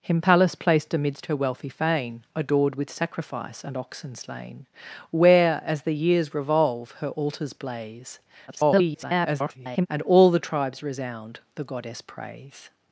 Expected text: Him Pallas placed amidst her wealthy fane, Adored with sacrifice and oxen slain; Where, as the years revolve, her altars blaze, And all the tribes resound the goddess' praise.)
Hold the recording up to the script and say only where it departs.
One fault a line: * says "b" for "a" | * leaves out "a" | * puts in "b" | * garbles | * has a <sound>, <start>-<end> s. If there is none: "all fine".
* garbles